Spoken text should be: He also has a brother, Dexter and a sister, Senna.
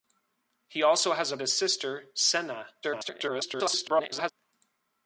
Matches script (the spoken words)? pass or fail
fail